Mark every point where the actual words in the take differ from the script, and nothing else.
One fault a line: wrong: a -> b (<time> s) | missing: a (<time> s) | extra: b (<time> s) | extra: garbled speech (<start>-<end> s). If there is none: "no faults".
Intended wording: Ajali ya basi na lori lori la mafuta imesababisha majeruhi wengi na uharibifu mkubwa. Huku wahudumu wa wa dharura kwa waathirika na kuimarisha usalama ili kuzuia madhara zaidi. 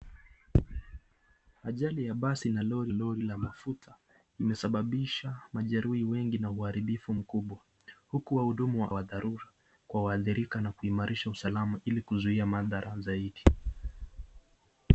no faults